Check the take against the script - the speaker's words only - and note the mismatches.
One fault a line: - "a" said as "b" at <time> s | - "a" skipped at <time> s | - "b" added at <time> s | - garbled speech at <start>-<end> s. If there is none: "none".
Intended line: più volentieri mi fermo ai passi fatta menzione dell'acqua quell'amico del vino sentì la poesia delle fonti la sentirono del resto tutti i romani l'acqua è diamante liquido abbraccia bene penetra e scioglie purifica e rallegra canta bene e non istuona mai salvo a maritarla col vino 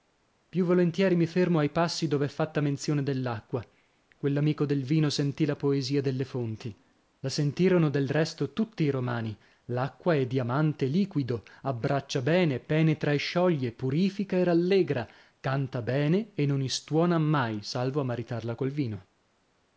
- "dov'è" added at 2.1 s